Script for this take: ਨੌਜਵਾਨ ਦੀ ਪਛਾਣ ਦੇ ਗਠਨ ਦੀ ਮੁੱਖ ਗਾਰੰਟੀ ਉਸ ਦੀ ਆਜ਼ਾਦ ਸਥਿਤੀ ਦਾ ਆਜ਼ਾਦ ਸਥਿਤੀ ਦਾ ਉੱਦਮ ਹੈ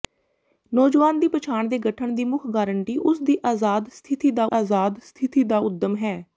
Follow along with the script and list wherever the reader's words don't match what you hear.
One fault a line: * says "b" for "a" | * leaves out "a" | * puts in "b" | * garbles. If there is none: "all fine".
all fine